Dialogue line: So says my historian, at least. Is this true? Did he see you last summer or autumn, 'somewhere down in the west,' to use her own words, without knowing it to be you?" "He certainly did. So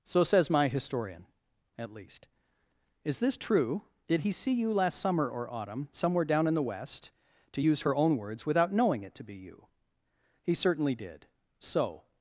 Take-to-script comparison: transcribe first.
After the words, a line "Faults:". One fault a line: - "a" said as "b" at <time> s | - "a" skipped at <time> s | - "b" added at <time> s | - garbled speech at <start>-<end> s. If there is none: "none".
So says my historian, at least. Is this true? Did he see you last summer or autumn, 'somewhere down in the west,' to use her own words, without knowing it to be you?" "He certainly did. So
Faults:
none